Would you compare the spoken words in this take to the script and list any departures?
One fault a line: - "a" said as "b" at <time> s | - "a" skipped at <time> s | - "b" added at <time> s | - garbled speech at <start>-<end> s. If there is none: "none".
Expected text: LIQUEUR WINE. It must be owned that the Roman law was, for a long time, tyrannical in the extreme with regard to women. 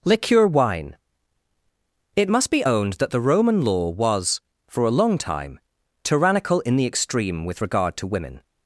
none